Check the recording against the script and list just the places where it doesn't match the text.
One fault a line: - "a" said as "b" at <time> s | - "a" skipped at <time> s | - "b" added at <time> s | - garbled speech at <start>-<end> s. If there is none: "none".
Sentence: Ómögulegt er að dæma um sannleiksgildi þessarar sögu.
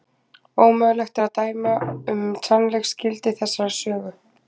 none